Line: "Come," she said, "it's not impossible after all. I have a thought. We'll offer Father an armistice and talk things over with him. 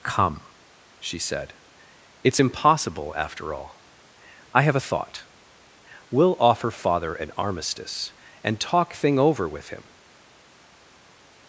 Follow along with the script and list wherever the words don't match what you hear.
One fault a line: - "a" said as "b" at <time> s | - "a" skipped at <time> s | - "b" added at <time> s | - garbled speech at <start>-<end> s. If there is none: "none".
- "not" skipped at 2.4 s
- "things" said as "thing" at 8.9 s